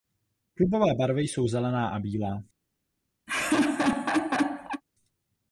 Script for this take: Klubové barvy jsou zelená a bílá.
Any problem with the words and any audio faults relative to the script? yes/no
yes